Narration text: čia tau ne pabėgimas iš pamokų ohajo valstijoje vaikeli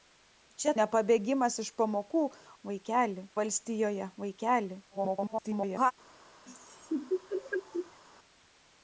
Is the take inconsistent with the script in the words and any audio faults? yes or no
yes